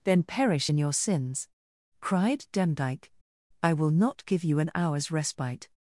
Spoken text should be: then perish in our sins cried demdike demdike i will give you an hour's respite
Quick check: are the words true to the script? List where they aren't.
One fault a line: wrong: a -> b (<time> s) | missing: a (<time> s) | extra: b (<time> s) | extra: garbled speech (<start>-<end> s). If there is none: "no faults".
wrong: our -> your (0.8 s)
missing: demdike (3.1 s)
extra: not (3.9 s)